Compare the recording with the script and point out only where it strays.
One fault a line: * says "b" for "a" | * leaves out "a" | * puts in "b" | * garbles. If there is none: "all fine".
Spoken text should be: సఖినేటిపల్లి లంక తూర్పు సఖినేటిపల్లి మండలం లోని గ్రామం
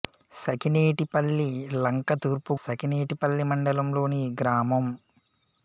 all fine